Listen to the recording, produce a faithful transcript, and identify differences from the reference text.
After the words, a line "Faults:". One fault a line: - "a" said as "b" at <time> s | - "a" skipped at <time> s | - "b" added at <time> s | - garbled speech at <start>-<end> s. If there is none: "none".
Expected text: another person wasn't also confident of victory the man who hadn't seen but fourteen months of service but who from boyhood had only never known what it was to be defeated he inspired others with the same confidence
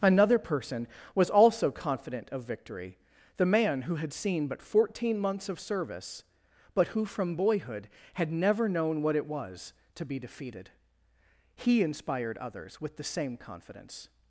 another person was also confident of victory the man who had seen but fourteen months of service but who from boyhood had never known what it was to be defeated he inspired others with the same confidence
Faults:
- "wasn't" said as "was" at 1.1 s
- "hadn't" said as "had" at 4.0 s
- "only" skipped at 8.3 s